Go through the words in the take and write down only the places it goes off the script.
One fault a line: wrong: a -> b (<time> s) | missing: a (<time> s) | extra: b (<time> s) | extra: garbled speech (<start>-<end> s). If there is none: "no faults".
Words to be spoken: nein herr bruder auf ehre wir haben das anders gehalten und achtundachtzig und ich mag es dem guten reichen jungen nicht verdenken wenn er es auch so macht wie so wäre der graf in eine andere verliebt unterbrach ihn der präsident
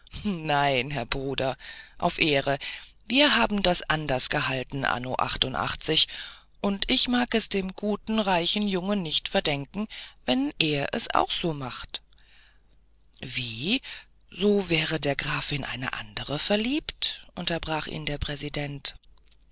wrong: und -> anno (4.8 s)